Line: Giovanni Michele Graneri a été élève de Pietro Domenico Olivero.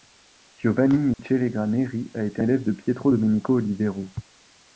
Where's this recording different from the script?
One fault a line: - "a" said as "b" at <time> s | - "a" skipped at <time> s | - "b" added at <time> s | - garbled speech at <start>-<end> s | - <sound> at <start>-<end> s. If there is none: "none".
- dropout at 1.1-1.2 s